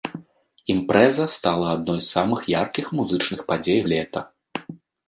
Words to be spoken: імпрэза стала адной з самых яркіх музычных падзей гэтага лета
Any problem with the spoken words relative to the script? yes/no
yes